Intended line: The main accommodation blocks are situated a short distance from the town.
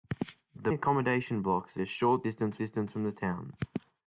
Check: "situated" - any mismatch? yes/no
yes